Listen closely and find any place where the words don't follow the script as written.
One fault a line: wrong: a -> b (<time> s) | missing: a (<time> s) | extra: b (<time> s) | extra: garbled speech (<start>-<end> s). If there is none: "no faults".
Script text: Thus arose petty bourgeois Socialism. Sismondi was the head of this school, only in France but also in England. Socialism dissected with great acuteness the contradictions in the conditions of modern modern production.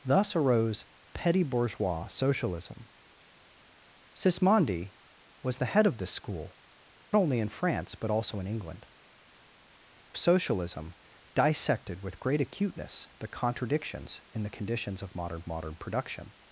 no faults